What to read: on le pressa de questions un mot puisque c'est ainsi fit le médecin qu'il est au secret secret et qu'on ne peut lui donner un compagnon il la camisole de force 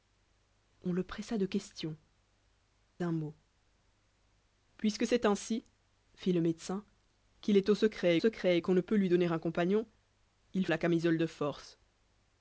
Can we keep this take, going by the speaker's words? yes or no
yes